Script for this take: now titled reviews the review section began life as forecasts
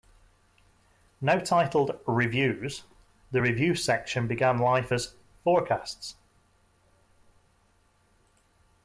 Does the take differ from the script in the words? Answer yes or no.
no